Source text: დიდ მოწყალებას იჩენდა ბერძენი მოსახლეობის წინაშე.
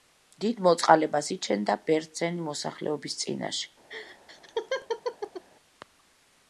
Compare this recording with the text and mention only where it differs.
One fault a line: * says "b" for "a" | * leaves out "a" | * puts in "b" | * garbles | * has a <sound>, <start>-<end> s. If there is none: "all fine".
* has a laugh, 3.9-5.4 s